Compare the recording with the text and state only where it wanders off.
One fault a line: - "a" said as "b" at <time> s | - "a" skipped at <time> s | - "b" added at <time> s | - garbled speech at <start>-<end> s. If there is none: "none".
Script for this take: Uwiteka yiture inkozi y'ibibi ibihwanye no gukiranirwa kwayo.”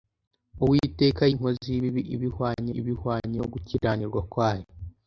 - "yiture" skipped at 1.2 s
- "ibihwanye" added at 2.8 s